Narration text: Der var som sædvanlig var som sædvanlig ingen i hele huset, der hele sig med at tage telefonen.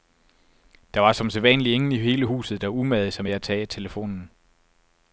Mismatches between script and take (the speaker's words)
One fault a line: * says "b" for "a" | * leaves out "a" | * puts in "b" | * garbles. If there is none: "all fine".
* leaves out "var som sædvanlig"
* says "umagede" for "hele"